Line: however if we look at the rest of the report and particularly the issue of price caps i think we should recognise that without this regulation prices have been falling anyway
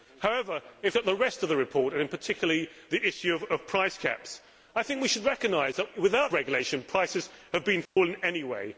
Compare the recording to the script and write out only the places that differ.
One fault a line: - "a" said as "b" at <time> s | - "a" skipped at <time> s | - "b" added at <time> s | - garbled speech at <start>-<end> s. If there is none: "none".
- "we look" skipped at 1.0 s
- "this" skipped at 6.3 s